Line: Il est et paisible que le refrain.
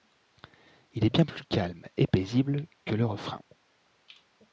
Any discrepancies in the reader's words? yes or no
yes